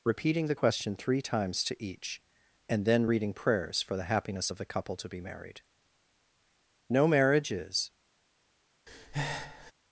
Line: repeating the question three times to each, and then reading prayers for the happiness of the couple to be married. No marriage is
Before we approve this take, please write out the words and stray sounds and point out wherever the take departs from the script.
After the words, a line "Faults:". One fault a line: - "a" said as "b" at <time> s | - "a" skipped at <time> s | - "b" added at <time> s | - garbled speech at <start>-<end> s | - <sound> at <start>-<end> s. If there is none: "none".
repeating the question three times to each, and then reading prayers for the happiness of the couple to be married. No marriage is
Faults:
- breath at 8.9-9.7 s